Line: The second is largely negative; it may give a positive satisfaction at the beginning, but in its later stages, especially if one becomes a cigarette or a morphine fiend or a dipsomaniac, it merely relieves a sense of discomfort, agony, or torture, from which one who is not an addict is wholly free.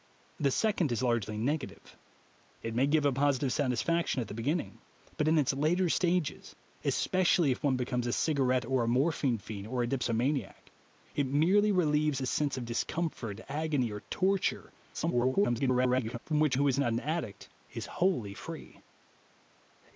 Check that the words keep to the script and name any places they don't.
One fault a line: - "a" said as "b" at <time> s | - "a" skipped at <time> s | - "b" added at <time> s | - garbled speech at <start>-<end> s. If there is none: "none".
- garbled speech at 14.9-16.2 s
- "one" skipped at 16.6 s